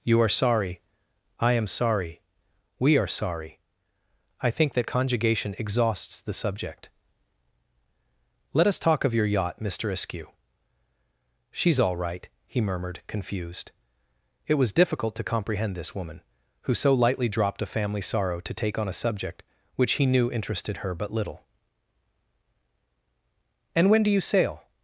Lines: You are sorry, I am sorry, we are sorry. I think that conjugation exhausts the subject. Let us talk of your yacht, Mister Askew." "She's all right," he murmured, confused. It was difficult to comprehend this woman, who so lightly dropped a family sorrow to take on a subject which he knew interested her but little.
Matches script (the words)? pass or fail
fail